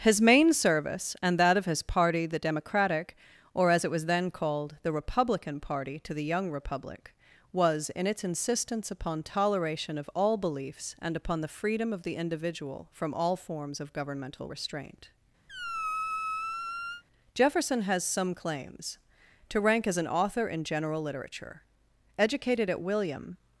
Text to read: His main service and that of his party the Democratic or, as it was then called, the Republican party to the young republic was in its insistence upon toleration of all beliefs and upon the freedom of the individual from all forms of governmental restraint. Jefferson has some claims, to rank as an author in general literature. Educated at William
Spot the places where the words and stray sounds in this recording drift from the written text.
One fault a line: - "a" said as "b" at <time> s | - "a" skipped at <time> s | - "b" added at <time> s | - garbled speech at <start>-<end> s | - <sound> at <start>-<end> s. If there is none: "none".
- squeak at 15.5-17.0 s